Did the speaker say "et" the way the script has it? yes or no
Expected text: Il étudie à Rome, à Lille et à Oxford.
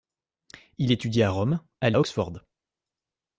no